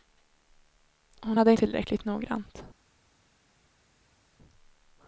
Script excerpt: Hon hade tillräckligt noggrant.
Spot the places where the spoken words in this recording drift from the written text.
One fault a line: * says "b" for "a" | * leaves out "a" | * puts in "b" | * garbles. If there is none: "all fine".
all fine